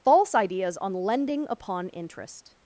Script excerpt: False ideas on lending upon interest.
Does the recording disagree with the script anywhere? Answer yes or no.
no